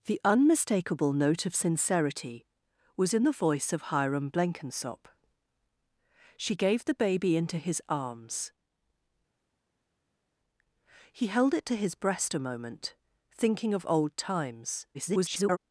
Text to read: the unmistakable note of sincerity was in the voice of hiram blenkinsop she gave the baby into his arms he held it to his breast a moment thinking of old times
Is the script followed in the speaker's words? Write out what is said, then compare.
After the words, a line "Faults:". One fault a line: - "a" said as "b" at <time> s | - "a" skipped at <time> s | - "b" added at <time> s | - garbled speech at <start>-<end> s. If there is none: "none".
the unmistakable note of sincerity was in the voice of hiram blenkinsop she gave the baby into his arms he held it to his breast a moment thinking of old times [garbled]
Faults:
- garbled speech at 14.9-15.6 s